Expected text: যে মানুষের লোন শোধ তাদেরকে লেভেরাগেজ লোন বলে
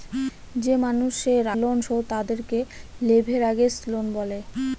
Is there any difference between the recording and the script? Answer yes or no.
no